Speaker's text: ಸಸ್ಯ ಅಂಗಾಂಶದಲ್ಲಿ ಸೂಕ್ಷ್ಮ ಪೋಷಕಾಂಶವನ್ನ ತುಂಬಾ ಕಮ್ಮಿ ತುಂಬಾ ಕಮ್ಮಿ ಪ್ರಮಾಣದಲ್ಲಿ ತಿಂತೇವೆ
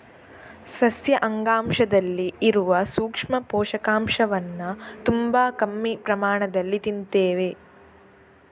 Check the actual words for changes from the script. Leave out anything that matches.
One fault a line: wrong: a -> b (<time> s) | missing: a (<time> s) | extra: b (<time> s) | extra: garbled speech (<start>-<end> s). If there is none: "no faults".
extra: ಇರುವ (2.4 s)
missing: ತುಂಬಾ ಕಮ್ಮಿ (6.0 s)